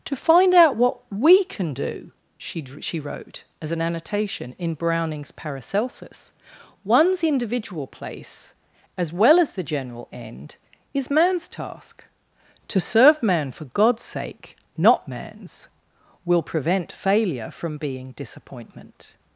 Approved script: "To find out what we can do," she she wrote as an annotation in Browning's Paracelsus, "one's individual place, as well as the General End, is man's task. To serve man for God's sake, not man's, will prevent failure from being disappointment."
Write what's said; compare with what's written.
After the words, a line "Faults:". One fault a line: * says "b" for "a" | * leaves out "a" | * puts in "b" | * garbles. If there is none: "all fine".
"To find out what we can do," she she wrote as an annotation in Browning's Paracelsus, "one's individual place, as well as the General End, is man's task. To serve man for God's sake, not man's, will prevent failure from being disappointment."
Faults:
all fine